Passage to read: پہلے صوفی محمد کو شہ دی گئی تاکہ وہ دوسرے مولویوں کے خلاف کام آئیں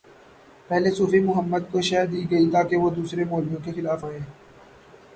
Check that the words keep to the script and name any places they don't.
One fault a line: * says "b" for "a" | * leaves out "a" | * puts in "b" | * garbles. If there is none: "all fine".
* leaves out "کام"